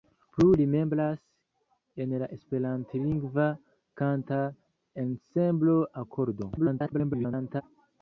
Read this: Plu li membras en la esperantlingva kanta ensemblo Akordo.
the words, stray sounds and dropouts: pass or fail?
fail